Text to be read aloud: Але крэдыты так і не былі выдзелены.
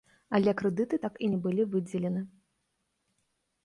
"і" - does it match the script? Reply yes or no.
yes